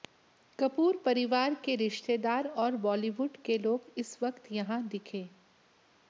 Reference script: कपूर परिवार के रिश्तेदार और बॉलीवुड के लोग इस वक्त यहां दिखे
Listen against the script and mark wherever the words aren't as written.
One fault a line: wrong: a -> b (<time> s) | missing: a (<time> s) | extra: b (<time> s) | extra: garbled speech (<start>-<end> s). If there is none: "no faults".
no faults